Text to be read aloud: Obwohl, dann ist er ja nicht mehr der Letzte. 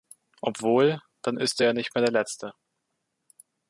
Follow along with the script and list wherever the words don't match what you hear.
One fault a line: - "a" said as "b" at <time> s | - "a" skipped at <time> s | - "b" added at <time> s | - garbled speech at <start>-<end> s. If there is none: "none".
none